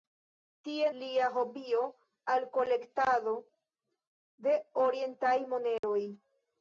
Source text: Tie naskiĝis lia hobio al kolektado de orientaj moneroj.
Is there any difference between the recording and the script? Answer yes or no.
yes